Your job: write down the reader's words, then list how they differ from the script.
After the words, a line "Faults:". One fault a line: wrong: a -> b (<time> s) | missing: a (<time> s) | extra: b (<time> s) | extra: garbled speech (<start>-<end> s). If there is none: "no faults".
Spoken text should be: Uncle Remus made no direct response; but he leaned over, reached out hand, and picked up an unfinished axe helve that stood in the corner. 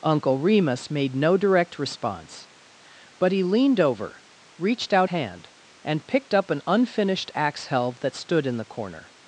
Uncle Remus made no direct response; but he leaned over, reached out hand, and picked up an unfinished axe helve that stood in the corner.
Faults:
no faults